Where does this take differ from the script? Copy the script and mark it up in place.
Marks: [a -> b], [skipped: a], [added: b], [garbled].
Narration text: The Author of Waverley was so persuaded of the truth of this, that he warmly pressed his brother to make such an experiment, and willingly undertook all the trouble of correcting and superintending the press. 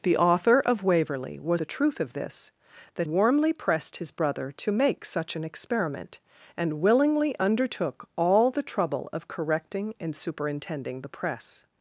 The Author of Waverley was [skipped: so persuaded of] the truth of this, that [skipped: he] warmly pressed his brother to make such an experiment, and willingly undertook all the trouble of correcting and superintending the press.